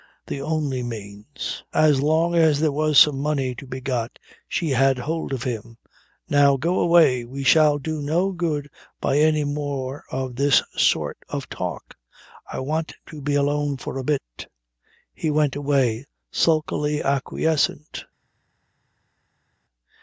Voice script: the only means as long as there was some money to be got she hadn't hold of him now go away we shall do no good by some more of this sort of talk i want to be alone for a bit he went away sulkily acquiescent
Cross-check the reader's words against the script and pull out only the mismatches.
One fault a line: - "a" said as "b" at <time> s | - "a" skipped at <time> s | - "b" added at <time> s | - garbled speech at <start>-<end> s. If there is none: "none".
- "hadn't" said as "had" at 4.7 s
- "some" said as "any" at 9.2 s